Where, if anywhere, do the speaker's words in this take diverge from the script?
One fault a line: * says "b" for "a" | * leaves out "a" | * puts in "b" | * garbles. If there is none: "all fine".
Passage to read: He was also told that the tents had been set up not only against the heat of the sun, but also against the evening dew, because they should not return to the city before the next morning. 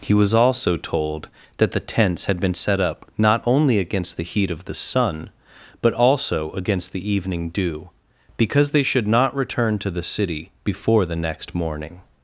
all fine